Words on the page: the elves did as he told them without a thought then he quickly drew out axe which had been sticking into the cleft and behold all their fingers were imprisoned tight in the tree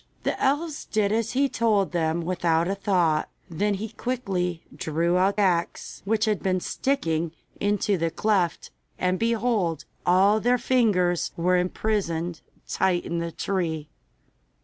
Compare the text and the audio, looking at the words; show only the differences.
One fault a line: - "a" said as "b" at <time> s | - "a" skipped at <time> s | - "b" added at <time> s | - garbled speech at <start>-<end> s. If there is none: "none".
none